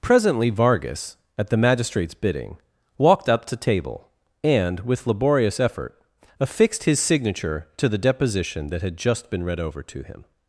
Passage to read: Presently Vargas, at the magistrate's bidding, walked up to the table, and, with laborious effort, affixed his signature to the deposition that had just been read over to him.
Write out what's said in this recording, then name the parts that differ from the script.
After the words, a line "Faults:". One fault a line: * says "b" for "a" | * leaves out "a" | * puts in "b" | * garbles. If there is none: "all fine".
Presently Vargas, at the magistrate's bidding, walked up to table, and, with laborious effort, affixed his signature to the deposition that had just been read over to him.
Faults:
* leaves out "the"